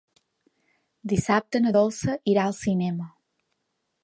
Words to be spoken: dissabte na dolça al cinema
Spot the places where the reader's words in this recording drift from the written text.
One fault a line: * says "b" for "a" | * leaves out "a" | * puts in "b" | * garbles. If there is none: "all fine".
* puts in "irà"